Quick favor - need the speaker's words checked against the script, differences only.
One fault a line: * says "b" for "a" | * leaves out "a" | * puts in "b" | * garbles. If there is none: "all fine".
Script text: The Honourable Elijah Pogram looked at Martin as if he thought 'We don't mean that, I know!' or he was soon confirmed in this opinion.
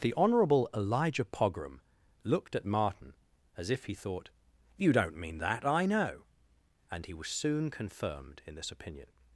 * says "You" for "We"
* says "and" for "or"